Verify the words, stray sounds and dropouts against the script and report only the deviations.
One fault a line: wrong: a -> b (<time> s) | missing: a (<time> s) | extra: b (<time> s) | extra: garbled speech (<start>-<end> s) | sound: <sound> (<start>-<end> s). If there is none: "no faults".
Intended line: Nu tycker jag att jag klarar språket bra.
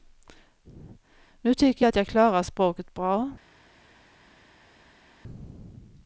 no faults